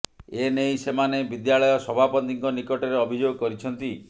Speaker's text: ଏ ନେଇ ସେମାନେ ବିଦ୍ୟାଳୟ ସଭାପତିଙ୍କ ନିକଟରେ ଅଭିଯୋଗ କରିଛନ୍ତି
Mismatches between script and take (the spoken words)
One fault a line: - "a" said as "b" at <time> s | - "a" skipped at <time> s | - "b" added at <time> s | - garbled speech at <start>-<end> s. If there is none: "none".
none